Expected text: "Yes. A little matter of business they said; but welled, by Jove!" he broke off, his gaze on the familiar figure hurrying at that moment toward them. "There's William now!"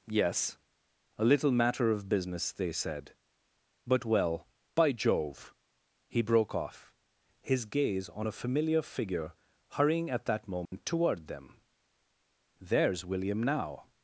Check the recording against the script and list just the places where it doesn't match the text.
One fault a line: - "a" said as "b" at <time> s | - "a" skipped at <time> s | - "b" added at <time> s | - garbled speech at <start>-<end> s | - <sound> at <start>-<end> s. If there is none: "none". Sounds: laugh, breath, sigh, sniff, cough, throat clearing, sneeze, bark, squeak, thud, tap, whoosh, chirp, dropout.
- "welled" said as "well" at 4.0 s
- "the" said as "a" at 8.3 s
- dropout at 10.7-10.7 s